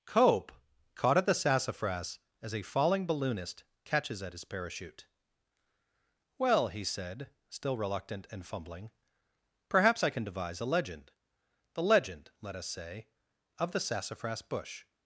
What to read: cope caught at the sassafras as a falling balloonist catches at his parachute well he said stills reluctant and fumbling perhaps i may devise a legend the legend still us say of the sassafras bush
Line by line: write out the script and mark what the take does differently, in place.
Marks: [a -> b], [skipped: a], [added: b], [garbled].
cope caught at the sassafras as a falling balloonist catches at his parachute well he said [stills -> still] reluctant and fumbling perhaps i [may -> can] devise a legend the legend [still -> let] us say of the sassafras bush